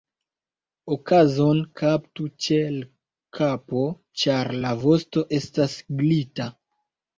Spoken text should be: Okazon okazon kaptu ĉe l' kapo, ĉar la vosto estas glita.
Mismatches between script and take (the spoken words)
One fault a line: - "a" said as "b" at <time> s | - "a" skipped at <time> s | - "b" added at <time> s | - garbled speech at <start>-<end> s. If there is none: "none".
- "okazon" skipped at 1.6 s